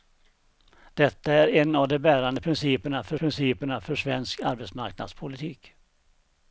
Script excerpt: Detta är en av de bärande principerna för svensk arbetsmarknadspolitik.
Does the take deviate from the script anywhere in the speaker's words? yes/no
yes